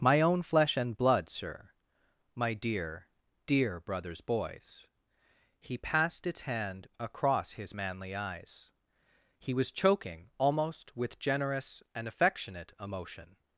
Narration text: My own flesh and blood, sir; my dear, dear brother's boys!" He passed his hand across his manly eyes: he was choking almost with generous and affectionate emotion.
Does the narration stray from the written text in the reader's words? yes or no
yes